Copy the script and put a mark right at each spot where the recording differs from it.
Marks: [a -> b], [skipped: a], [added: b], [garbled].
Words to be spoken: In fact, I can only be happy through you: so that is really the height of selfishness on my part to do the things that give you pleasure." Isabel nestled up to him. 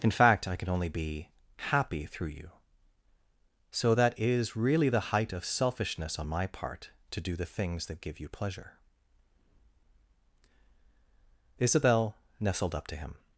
In fact, I can only be happy through you: so that is really the height of selfishness on my part to do the things that give you pleasure." Isabel nestled up to him.